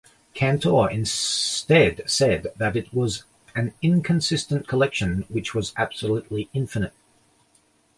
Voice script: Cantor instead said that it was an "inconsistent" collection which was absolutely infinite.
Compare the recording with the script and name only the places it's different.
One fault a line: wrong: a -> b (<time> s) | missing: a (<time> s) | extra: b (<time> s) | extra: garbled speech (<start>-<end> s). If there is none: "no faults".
no faults